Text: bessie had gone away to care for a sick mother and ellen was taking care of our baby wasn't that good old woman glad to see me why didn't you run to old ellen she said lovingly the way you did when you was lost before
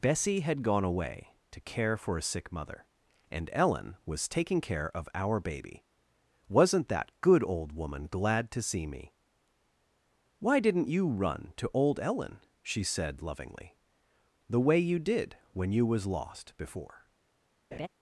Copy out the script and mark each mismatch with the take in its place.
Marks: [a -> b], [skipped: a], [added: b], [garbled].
bessie had gone away to care for a sick mother and ellen was taking care of our baby wasn't that good old woman glad to see me why didn't you run to old ellen she said lovingly the way you did when you was lost before